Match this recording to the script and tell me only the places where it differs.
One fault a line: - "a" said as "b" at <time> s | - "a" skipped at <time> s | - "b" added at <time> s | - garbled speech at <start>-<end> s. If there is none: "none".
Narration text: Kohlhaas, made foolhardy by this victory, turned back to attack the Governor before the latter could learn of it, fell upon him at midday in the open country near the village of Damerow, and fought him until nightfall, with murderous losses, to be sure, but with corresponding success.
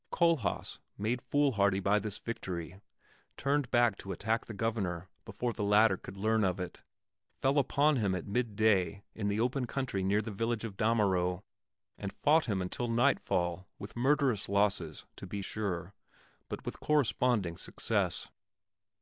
none